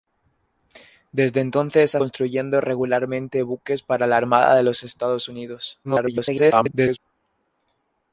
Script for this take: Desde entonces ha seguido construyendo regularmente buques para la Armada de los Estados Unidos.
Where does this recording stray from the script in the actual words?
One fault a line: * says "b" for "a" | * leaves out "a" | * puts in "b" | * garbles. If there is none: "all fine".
* leaves out "seguido"
* garbles